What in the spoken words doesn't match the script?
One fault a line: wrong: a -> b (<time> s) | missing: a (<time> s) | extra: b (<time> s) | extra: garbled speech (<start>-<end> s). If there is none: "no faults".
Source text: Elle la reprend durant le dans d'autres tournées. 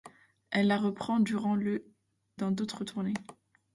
no faults